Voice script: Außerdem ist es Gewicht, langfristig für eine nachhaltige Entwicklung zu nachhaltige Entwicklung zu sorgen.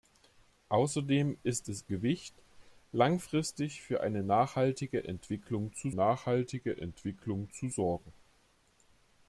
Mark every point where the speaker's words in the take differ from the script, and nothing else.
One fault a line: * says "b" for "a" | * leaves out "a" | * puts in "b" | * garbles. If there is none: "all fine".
all fine